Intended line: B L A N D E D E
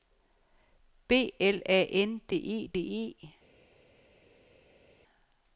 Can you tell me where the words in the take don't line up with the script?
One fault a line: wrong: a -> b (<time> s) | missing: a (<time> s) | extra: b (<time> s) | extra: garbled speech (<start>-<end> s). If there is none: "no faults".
no faults